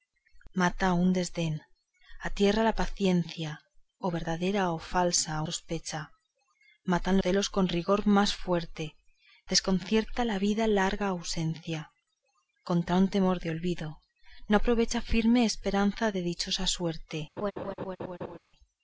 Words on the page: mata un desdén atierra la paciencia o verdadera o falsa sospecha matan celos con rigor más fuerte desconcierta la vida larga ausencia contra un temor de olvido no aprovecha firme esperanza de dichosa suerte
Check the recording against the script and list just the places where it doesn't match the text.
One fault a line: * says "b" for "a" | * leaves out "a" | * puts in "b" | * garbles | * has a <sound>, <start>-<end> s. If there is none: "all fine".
* has a laugh, 17.4-18.4 s